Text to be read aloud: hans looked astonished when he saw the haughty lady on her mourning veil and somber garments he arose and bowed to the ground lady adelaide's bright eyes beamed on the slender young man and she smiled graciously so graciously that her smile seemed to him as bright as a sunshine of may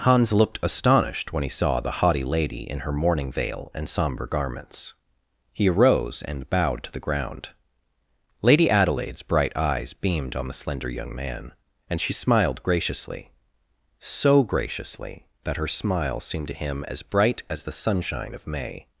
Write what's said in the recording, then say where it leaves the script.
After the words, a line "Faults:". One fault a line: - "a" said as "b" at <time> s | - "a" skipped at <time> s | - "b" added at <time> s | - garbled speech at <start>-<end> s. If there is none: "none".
hans looked astonished when he saw the haughty lady in her mourning veil and somber garments he arose and bowed to the ground lady adelaide's bright eyes beamed on the slender young man and she smiled graciously so graciously that her smile seemed to him as bright as the sunshine of may
Faults:
- "on" said as "in" at 2.7 s
- "a" said as "the" at 17.6 s